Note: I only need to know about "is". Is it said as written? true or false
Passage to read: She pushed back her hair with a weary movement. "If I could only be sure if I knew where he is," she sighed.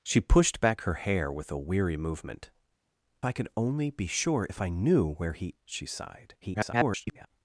false